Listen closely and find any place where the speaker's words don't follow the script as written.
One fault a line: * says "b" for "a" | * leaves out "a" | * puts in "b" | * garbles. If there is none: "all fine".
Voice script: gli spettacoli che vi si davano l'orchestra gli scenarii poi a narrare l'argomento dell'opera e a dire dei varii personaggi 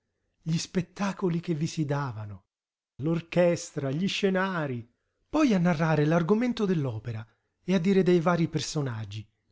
all fine